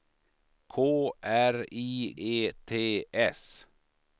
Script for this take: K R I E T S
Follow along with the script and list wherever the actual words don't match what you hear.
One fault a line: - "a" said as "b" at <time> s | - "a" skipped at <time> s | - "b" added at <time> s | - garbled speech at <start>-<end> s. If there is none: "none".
none